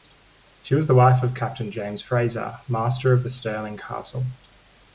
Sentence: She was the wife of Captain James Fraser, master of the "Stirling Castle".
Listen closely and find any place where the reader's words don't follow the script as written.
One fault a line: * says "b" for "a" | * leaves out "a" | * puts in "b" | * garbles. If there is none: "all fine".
all fine